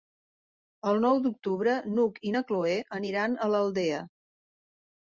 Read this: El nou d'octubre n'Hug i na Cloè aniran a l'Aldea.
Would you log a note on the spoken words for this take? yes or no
no